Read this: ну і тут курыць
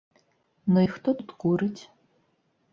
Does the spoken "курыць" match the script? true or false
true